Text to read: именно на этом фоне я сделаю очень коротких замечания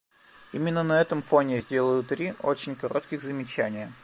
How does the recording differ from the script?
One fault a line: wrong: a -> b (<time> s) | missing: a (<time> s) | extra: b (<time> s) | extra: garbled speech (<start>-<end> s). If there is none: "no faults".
extra: три (2.0 s)